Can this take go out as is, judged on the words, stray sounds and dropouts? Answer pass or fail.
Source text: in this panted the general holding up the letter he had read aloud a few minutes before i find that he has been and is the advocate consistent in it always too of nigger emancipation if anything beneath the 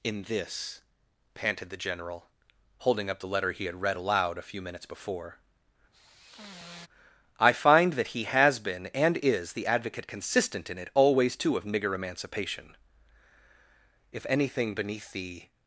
fail